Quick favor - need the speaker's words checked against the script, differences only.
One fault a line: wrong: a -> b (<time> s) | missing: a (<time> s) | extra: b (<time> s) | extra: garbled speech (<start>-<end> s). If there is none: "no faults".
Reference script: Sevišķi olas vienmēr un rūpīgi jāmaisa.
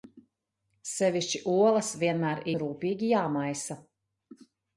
no faults